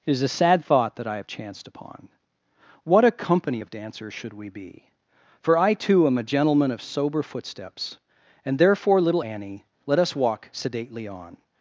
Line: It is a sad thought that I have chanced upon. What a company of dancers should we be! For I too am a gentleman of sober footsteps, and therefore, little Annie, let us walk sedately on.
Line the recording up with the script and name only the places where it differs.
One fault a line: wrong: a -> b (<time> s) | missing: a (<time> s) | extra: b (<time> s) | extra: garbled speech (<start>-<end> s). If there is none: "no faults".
no faults